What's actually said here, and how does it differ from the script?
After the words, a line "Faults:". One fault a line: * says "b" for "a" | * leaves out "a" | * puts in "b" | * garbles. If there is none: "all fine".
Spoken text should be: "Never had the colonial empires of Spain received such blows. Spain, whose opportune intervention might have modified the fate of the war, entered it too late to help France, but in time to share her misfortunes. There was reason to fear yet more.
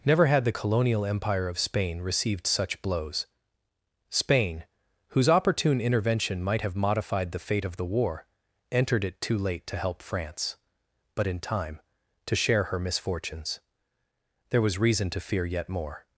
"Never had the colonial empire of Spain received such blows. Spain, whose opportune intervention might have modified the fate of the war, entered it too late to help France, but in time to share her misfortunes. There was reason to fear yet more.
Faults:
* says "empire" for "empires"